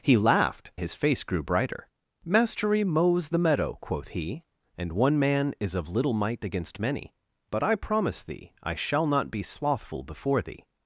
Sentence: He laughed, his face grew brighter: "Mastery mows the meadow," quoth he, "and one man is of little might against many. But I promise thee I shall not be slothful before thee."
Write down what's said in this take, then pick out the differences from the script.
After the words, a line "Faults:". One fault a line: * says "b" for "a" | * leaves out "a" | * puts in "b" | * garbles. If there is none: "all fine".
He laughed, his face grew brighter: "Mastery mows the meadow," quoth he, "and one man is of little might against many. But I promise thee I shall not be slothful before thee."
Faults:
all fine